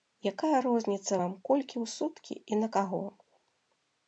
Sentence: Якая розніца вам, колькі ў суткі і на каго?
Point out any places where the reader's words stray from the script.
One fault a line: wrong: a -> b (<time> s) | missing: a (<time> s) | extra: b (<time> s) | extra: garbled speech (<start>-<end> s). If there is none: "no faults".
no faults